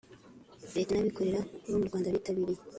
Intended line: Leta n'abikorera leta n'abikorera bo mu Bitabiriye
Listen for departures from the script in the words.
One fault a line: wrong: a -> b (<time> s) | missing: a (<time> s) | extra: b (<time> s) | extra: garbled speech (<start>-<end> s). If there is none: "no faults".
missing: leta n'abikorera (1.4 s)
extra: Rwanda (1.9 s)